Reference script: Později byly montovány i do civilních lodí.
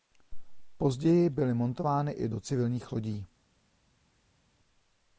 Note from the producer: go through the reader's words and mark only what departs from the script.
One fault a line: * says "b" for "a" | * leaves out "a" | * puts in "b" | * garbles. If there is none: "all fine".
all fine